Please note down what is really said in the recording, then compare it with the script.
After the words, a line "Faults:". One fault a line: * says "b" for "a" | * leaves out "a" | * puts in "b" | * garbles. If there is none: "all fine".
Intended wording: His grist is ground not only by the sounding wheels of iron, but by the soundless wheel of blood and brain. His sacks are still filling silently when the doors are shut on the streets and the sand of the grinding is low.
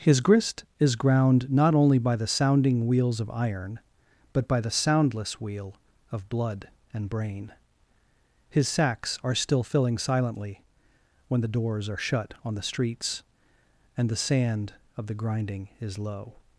His grist is ground not only by the sounding wheels of iron, but by the soundless wheel of blood and brain. His sacks are still filling silently when the doors are shut on the streets and the sand of the grinding is low.
Faults:
all fine